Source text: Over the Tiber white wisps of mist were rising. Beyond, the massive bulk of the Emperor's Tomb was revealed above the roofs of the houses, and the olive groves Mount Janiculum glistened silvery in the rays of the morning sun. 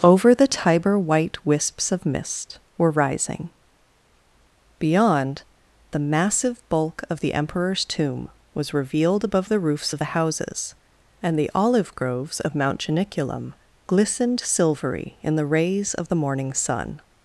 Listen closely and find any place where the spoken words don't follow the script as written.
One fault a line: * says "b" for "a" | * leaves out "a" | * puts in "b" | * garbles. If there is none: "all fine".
* puts in "of"